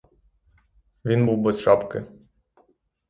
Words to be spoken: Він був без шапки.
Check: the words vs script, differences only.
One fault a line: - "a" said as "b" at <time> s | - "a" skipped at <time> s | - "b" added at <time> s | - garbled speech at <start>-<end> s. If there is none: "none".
none